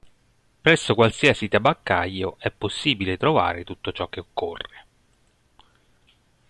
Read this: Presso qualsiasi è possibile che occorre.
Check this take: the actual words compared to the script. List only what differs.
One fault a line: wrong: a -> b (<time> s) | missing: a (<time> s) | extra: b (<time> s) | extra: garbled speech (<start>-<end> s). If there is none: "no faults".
extra: tabaccaio (1.5 s)
extra: trovare tutto ciò (3.2 s)